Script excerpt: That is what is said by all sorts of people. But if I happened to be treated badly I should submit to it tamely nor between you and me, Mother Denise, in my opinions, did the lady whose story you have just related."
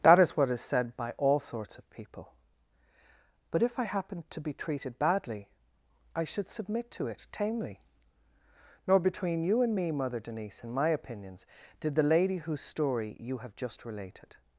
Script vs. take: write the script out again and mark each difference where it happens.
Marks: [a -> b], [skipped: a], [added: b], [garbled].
That is what is said by all sorts of people. But if I happened to be treated badly I should submit to it tamely nor between you and me, Mother Denise, in my opinions, did the lady whose story you have just related."